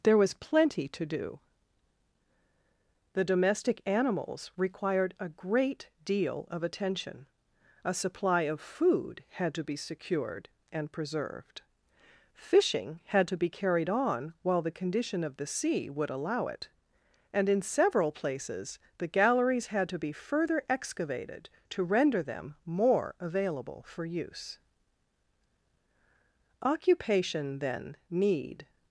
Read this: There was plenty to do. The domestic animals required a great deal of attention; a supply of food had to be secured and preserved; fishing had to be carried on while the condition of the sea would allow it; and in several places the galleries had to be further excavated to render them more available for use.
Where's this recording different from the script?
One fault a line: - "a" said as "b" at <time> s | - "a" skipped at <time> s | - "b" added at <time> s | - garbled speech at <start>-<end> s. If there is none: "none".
- "Occupation then need" added at 26.6 s